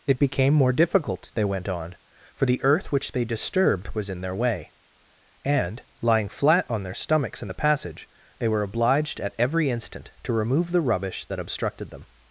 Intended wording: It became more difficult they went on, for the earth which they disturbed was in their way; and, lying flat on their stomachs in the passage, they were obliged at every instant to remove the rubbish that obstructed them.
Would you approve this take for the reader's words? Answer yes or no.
yes